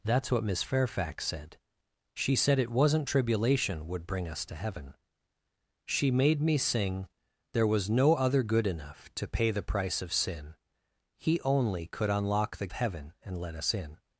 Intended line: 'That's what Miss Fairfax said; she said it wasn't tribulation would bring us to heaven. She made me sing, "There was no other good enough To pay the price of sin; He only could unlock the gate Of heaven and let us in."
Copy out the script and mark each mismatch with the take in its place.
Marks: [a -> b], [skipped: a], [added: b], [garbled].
'That's what Miss Fairfax said; she said it wasn't tribulation would bring us to heaven. She made me sing, "There was no other good enough To pay the price of sin; He only could unlock the [skipped: gate Of] heaven and let us in."